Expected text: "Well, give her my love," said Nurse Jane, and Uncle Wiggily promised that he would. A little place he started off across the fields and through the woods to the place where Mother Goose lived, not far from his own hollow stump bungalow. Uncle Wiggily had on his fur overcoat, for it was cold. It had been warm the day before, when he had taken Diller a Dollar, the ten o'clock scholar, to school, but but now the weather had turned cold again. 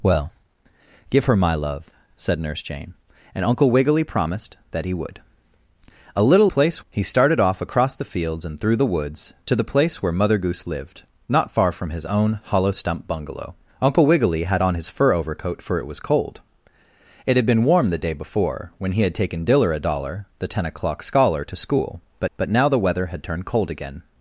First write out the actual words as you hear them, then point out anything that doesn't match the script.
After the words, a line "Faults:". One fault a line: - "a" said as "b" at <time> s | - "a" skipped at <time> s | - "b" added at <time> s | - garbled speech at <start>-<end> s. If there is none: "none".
"Well, give her my love," said Nurse Jane, and Uncle Wiggily promised that he would. A little place he started off across the fields and through the woods to the place where Mother Goose lived, not far from his own hollow stump bungalow. Uncle Wiggily had on his fur overcoat, for it was cold. It had been warm the day before, when he had taken Diller a Dollar, the ten o'clock scholar, to school, but but now the weather had turned cold again.
Faults:
none